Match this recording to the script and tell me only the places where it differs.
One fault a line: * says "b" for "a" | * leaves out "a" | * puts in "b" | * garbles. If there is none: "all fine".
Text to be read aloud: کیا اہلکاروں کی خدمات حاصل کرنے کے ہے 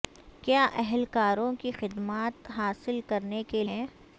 all fine